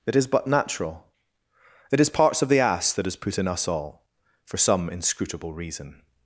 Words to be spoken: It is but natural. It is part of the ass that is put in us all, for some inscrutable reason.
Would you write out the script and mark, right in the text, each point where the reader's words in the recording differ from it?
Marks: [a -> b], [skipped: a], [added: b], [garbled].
It is but natural. It is [part -> parts] of the ass that is put in us all, for some inscrutable reason.